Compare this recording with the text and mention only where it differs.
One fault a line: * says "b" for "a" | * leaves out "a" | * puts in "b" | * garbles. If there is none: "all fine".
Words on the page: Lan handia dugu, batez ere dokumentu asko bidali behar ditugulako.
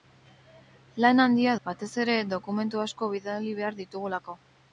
* leaves out "dugu"